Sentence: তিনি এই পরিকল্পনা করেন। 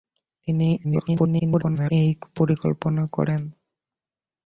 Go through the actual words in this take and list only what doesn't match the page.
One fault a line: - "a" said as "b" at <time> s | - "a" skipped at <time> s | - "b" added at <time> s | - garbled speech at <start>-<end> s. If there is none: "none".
- garbled speech at 0.8-1.9 s